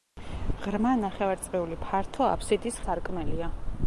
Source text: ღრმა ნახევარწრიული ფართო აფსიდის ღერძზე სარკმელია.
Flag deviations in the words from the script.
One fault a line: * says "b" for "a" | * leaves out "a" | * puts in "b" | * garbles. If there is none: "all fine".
* leaves out "ღერძზე"